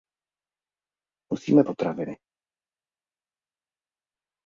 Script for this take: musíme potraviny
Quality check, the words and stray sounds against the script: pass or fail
pass